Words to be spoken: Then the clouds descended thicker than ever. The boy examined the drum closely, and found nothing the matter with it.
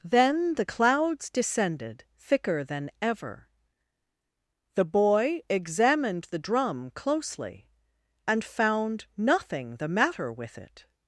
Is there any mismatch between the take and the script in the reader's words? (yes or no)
no